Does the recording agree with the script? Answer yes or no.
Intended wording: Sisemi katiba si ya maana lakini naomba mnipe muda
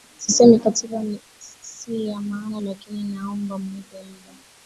yes